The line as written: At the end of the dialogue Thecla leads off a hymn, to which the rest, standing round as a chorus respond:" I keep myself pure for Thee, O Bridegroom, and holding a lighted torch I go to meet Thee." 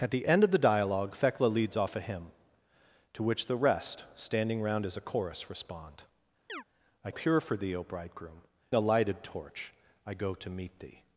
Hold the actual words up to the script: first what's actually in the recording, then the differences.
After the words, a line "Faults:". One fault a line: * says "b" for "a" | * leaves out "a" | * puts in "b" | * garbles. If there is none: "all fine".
At the end of the dialogue Thecla leads off a hymn, to which the rest, standing round as a chorus respond:" I pure for Thee, O Bridegroom, a lighted torch I go to meet Thee."
Faults:
* leaves out "keep myself"
* leaves out "and holding"